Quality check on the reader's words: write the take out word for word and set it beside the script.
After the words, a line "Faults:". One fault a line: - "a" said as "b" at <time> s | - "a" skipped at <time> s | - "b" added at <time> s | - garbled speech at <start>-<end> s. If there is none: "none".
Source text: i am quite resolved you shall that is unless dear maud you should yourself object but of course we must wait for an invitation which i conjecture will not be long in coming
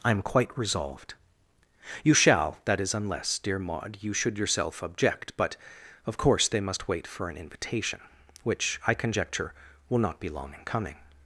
i am quite resolved you shall that is unless dear maud you should yourself object but of course they must wait for an invitation which i conjecture will not be long in coming
Faults:
- "we" said as "they" at 6.5 s